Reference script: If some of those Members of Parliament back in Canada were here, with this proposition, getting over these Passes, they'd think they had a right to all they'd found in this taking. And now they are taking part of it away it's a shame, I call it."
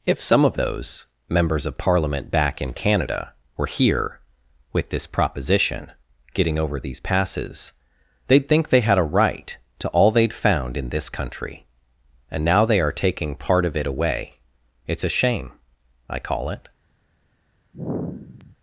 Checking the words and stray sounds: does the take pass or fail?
fail